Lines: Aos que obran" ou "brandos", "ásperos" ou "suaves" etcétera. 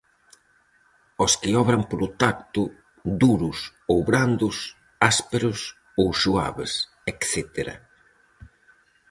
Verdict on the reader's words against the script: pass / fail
fail